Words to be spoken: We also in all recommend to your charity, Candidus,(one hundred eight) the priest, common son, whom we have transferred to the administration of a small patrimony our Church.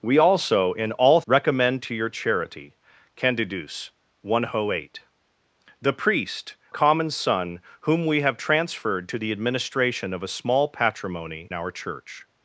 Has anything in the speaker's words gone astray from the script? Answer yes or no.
no